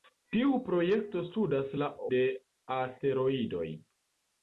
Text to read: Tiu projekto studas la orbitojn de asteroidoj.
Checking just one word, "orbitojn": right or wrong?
wrong